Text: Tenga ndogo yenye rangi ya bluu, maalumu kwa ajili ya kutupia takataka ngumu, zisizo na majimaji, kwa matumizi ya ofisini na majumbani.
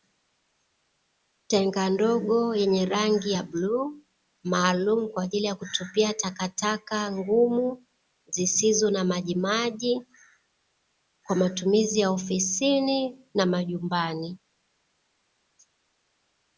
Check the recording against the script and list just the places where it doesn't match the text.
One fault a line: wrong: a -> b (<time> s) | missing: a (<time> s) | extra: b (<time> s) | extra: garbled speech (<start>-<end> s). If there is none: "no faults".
no faults